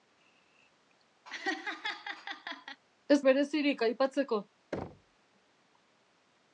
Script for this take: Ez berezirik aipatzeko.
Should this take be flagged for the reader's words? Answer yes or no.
no